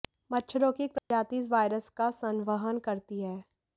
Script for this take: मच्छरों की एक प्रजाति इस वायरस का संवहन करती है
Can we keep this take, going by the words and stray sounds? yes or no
no